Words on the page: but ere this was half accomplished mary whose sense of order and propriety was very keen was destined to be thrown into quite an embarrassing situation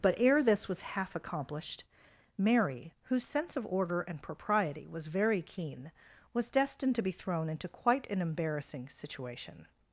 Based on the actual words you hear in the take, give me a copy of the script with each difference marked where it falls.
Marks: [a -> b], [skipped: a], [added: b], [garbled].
but ere this was half accomplished mary whose sense of order and propriety was very keen was destined to be thrown into quite an embarrassing situation